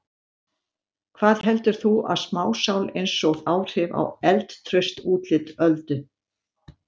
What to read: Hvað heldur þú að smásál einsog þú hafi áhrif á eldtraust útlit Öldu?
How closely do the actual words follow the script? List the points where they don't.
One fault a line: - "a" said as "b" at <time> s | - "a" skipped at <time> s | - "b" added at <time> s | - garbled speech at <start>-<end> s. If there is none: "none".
- "þú hafi" skipped at 3.4 s